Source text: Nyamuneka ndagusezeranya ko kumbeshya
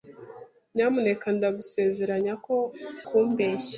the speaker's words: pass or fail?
pass